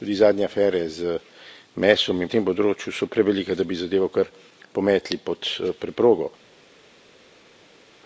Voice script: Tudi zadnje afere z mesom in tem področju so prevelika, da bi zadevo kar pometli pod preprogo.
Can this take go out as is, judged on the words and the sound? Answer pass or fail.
pass